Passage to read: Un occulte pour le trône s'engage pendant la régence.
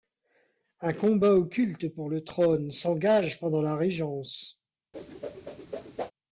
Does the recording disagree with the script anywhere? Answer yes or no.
yes